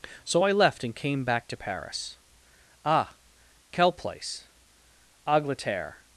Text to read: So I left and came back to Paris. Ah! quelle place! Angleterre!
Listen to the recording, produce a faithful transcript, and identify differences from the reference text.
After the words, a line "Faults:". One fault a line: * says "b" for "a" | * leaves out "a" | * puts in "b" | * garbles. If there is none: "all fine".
So I left and came back to Paris. Ah! quelle place! Angleterre!
Faults:
all fine